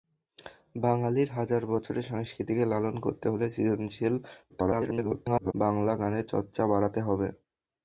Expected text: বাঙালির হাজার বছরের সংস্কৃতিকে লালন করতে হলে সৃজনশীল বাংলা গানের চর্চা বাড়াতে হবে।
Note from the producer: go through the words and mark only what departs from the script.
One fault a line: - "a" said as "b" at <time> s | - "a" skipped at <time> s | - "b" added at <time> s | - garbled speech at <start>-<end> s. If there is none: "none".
- garbled speech at 4.5-5.5 s